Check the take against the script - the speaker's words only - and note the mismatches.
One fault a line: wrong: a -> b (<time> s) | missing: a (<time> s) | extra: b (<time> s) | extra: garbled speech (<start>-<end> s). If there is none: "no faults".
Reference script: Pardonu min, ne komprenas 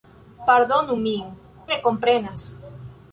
no faults